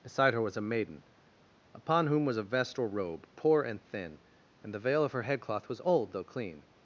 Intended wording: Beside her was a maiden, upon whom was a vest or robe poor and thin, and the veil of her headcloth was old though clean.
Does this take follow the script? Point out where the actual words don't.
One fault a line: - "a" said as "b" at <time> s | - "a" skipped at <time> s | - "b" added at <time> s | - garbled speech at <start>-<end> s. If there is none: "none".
none